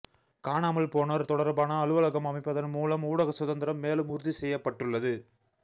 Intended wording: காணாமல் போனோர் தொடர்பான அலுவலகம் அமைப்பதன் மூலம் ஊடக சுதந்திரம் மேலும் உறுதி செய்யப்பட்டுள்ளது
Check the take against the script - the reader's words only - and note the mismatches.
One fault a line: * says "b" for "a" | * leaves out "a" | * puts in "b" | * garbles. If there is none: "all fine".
all fine